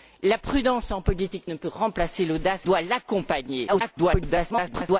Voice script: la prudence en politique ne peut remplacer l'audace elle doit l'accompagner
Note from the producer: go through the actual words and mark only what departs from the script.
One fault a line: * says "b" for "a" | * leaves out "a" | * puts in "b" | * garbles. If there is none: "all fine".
* leaves out "elle"
* garbles